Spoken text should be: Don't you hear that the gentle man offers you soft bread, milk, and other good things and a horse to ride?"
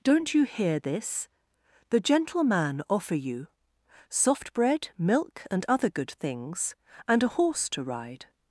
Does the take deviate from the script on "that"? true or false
true